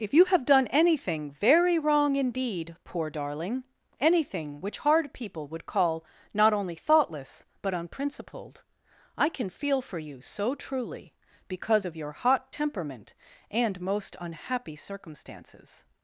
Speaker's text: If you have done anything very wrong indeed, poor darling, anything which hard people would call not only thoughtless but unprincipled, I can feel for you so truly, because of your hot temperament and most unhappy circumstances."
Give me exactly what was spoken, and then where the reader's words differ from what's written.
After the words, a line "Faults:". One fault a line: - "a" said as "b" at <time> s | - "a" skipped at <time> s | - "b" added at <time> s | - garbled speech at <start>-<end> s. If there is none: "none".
If you have done anything very wrong indeed, poor darling, anything which hard people would call not only thoughtless but unprincipled, I can feel for you so truly, because of your hot temperament and most unhappy circumstances."
Faults:
none